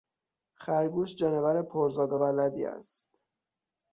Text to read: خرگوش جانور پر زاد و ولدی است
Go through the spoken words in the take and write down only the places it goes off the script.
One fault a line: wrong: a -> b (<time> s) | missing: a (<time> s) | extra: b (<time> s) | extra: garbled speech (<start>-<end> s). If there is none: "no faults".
no faults